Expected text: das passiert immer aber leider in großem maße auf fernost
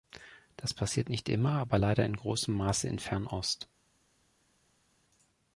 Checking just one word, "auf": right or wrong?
wrong